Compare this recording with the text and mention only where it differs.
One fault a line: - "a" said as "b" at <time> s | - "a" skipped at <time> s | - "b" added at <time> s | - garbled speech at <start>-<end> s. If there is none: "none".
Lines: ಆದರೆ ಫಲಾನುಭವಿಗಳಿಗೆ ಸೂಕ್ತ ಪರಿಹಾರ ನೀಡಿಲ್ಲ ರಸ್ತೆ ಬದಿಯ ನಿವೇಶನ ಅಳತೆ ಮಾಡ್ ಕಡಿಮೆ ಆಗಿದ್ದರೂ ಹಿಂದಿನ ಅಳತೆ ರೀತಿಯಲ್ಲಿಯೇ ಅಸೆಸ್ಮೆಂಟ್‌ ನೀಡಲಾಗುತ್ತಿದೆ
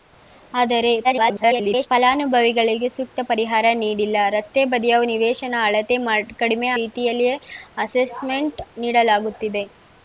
- garbled speech at 1.0-1.9 s
- "ಆಗಿದ್ದರೂ ಹಿಂದಿನ ಅಳತೆ" skipped at 6.7 s